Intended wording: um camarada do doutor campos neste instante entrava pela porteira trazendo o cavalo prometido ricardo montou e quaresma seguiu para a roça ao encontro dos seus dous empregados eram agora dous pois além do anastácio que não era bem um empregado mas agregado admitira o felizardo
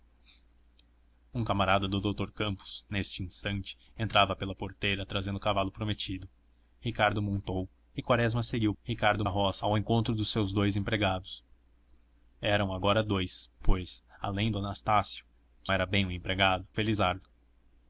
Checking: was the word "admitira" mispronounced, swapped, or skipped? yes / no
yes